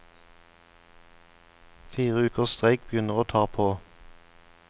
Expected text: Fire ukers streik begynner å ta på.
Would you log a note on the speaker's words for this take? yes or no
no